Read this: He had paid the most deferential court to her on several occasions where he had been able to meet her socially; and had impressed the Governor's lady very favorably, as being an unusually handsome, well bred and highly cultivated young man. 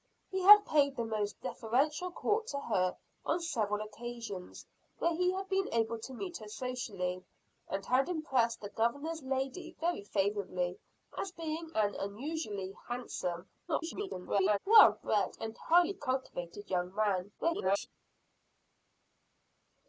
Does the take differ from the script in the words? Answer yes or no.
yes